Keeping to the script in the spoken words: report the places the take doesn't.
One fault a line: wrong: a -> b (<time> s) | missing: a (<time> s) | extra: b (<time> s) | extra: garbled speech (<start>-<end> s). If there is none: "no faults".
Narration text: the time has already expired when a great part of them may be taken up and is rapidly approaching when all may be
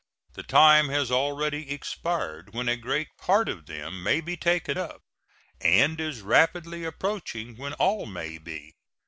no faults